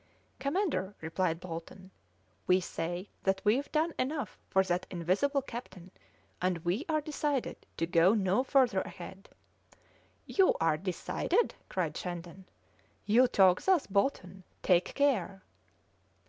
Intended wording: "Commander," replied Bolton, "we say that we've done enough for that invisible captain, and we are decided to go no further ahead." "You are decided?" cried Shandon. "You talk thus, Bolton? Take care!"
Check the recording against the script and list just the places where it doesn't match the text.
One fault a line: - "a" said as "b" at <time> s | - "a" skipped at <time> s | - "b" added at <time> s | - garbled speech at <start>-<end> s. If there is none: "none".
none